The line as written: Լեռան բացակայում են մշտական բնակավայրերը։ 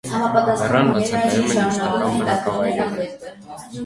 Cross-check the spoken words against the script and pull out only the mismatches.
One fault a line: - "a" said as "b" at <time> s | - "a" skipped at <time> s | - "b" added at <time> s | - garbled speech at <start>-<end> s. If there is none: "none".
none